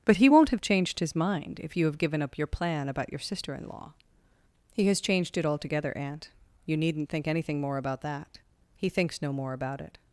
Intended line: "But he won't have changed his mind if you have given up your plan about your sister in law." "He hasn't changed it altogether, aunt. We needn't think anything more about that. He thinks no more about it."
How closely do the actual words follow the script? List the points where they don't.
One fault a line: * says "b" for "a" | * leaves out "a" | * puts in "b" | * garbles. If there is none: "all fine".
* says "has" for "hasn't"
* says "You" for "We"